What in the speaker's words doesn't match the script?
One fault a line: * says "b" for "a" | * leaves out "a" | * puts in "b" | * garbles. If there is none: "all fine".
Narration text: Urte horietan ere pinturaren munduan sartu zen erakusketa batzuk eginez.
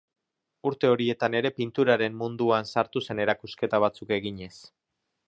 all fine